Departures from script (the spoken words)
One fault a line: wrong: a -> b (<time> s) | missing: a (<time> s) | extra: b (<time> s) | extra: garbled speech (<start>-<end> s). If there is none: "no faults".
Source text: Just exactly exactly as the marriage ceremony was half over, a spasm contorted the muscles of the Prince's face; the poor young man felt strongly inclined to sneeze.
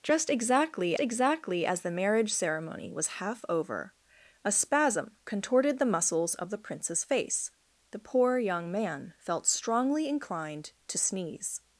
no faults